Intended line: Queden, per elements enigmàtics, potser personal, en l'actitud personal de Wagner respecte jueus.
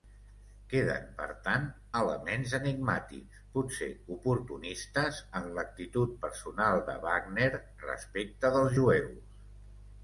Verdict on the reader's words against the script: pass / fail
fail